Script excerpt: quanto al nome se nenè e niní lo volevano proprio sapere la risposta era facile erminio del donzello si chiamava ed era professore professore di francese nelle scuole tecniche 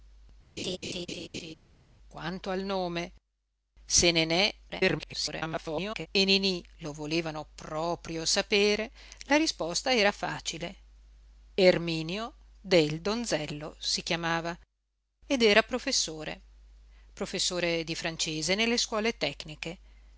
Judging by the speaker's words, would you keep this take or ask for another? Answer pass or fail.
fail